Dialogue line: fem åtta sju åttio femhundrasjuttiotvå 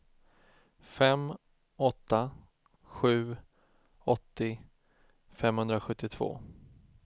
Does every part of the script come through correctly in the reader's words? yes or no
yes